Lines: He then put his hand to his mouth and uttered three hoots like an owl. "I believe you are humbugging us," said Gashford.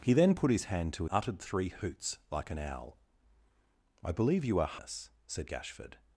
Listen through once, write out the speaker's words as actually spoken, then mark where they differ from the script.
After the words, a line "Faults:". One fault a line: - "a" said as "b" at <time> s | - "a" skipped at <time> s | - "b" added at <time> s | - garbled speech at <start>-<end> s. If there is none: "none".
He then put his hand to uttered three hoots like an owl. "I believe you are us," said Gashford.
Faults:
- "his mouth and" skipped at 1.1 s
- "humbugging" skipped at 4.8 s